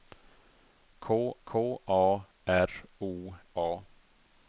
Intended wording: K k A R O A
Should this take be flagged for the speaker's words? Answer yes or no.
no